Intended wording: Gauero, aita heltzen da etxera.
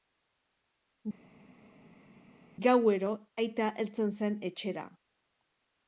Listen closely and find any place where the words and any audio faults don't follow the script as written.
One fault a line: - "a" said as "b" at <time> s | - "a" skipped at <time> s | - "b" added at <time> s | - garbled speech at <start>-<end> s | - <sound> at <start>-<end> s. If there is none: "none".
- "da" said as "zen" at 4.2 s